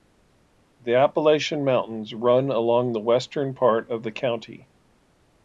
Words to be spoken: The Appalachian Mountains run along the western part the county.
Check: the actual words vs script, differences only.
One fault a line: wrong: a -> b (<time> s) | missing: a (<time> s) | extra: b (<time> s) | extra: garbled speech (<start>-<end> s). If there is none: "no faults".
extra: of (3.9 s)